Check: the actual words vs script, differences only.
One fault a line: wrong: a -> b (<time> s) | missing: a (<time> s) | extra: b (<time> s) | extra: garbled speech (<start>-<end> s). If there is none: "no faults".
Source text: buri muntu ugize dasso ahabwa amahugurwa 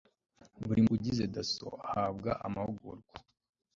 missing: muntu (0.8 s)